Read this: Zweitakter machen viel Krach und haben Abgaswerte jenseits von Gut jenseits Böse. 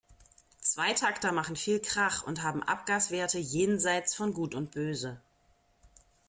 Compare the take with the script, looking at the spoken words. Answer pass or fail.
fail